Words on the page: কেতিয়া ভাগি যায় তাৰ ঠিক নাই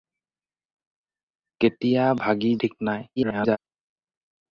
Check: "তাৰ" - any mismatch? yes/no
yes